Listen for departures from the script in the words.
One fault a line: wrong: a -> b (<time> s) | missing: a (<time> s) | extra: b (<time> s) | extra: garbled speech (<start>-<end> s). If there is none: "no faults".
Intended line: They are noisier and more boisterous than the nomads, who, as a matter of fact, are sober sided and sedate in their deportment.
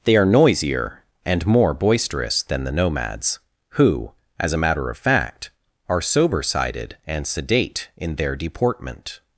no faults